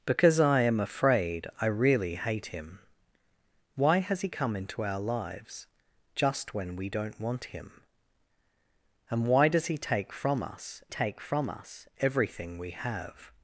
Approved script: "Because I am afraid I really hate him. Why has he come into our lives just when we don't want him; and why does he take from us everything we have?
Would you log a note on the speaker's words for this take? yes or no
yes